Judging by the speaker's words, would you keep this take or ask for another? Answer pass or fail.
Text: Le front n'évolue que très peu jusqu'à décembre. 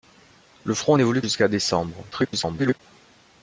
fail